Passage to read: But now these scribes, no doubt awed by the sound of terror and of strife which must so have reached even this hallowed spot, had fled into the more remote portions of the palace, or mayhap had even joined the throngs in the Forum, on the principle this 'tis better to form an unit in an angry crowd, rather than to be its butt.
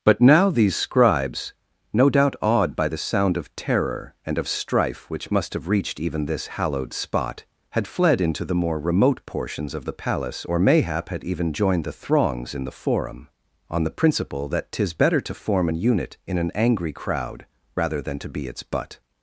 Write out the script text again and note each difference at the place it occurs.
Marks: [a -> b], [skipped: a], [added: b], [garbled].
But now these scribes, no doubt awed by the sound of terror and of strife which must [skipped: so] have reached even this hallowed spot, had fled into the more remote portions of the palace, or mayhap had even joined the throngs in the Forum, on the principle [this -> that] 'tis better to form an unit in an angry crowd, rather than to be its butt.